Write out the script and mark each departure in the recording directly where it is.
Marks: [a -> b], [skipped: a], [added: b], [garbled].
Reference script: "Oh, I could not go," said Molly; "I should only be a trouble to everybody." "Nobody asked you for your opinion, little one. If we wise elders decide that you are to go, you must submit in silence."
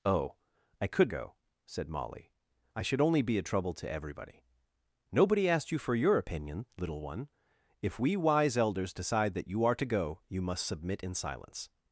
"Oh, I could [skipped: not] go," said Molly; "I should only be a trouble to everybody." "Nobody asked you for your opinion, little one. If we wise elders decide that you are to go, you must submit in silence."